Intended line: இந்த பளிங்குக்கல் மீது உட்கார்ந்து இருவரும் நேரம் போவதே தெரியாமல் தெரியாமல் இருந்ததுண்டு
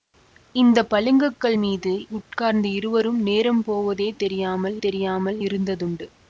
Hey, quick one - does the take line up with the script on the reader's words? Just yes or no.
yes